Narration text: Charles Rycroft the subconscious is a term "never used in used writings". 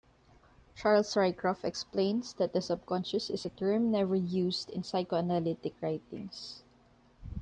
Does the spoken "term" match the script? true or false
true